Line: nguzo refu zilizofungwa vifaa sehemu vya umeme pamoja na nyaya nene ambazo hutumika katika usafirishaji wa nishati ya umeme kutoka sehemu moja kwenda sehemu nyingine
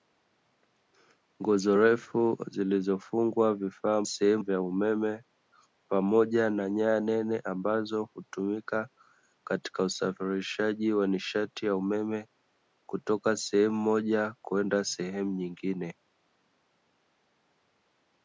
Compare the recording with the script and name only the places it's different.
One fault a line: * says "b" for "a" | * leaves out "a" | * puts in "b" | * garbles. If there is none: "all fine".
all fine